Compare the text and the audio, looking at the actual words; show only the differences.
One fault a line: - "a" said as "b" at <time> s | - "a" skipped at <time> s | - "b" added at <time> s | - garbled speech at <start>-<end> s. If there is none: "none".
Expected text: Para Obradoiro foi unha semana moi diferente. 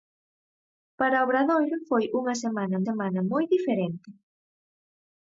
- "semana" added at 2.9 s